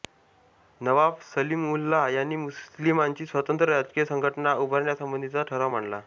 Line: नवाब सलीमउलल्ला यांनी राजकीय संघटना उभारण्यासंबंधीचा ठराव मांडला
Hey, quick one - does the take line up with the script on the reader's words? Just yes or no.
no